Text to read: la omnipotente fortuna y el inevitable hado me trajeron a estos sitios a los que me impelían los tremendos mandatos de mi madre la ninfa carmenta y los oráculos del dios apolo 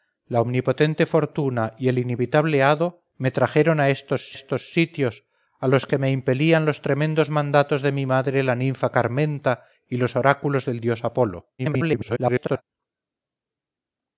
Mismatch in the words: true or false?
true